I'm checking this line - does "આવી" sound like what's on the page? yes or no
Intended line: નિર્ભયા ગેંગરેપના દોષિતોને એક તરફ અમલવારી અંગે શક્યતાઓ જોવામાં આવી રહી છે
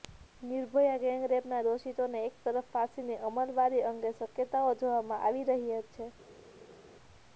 yes